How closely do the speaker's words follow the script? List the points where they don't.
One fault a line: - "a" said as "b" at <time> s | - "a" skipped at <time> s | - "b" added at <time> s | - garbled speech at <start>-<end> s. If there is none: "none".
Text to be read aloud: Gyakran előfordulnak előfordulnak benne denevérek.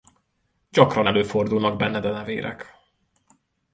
- "előfordulnak" skipped at 1.8 s